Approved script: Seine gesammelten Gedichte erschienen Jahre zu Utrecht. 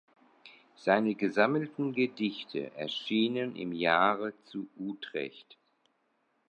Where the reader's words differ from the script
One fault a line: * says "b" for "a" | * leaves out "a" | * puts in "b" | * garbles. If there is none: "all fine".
* puts in "im"